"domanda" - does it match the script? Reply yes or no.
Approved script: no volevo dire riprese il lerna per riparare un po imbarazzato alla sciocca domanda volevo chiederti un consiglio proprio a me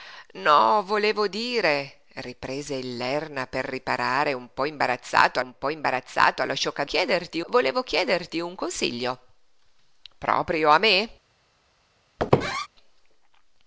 no